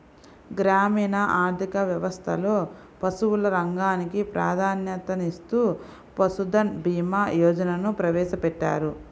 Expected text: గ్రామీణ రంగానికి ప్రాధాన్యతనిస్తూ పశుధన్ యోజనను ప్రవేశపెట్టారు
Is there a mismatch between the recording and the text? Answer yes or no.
yes